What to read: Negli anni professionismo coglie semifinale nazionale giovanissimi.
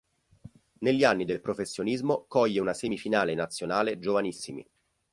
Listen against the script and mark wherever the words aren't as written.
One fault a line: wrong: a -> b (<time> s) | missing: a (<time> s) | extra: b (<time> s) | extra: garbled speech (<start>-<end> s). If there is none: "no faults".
extra: del (1.2 s)
extra: una (2.6 s)